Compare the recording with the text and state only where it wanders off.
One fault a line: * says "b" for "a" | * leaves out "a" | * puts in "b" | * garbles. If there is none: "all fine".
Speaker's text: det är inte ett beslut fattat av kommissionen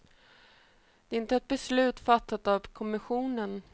all fine